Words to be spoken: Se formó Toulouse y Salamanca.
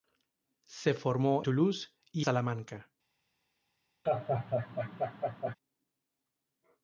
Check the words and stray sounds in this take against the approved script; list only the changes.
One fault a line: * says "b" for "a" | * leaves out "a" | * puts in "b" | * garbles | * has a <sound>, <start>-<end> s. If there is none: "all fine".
* has a laugh, 4.1-5.6 s